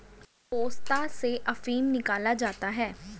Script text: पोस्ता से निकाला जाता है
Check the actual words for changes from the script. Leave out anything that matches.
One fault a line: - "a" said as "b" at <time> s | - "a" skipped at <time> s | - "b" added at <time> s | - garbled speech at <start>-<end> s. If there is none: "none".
- "अफीम" added at 1.5 s